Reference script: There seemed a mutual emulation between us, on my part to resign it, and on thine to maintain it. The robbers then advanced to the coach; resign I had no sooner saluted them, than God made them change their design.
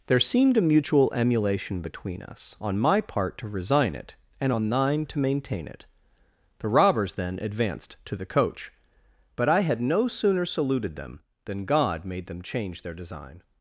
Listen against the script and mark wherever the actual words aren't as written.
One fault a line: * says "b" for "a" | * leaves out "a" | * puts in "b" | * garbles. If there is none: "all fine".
* says "but" for "resign"